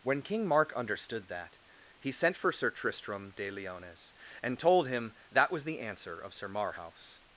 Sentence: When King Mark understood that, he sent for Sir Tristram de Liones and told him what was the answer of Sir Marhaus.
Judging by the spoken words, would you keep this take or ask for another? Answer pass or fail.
fail